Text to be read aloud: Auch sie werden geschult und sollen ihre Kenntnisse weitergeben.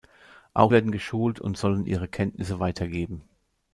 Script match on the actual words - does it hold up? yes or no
no